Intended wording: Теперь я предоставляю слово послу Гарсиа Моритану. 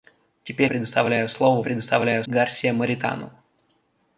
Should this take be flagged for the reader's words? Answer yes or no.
yes